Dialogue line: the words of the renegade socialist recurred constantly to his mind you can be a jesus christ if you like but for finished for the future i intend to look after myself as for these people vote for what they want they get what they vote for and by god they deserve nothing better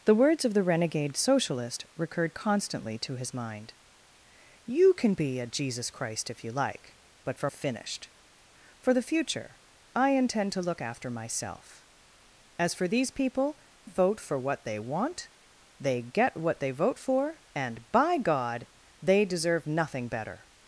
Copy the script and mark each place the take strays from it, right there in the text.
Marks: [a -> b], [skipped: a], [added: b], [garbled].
the words of the renegade socialist recurred constantly to his mind you can be a jesus christ if you like but for finished for the future i intend to look after myself as for these people vote for what they want they get what they vote for and by god they deserve nothing better